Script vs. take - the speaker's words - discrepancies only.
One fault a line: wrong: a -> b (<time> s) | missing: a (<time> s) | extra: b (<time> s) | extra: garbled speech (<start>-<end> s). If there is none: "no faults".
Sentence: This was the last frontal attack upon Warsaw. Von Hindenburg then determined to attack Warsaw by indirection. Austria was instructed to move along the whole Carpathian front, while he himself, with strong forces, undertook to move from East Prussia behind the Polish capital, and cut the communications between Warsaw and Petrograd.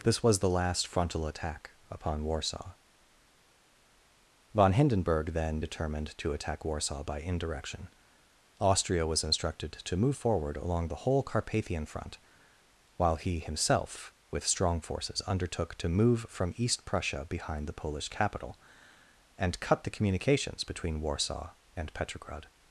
extra: forward (10.1 s)